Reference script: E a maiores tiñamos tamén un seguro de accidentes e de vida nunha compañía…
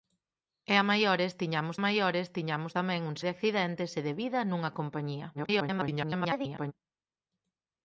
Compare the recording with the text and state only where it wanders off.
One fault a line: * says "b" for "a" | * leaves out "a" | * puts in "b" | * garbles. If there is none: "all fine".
* puts in "maiores tiñamos"
* leaves out "seguro"
* garbles